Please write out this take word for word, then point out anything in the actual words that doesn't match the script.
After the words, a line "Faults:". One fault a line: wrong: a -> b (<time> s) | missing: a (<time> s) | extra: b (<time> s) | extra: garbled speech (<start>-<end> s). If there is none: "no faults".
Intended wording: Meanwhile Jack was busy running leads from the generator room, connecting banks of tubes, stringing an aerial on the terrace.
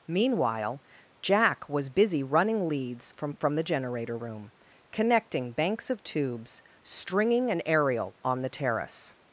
Meanwhile Jack was busy running leads from from the generator room, connecting banks of tubes, stringing an aerial on the terrace.
Faults:
extra: from (3.4 s)